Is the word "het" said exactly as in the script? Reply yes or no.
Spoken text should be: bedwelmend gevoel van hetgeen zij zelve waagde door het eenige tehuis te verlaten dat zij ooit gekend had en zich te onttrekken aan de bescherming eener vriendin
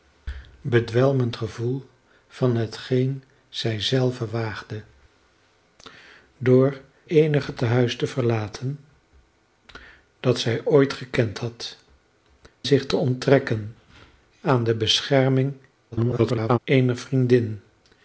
no